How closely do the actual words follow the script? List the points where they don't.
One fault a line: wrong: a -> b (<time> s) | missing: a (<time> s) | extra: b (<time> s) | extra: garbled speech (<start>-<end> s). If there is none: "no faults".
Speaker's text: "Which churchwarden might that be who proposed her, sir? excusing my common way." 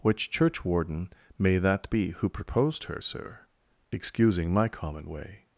wrong: might -> may (1.4 s)